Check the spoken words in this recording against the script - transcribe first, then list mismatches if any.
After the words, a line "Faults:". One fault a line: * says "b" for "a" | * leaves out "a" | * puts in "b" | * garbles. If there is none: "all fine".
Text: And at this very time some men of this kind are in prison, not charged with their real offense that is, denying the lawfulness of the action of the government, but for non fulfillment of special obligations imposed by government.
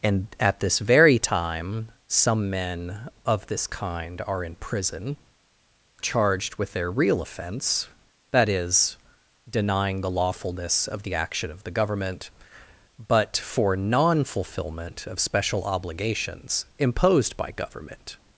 And at this very time some men of this kind are in prison, charged with their real offense that is, denying the lawfulness of the action of the government, but for non fulfillment of special obligations imposed by government.
Faults:
* leaves out "not"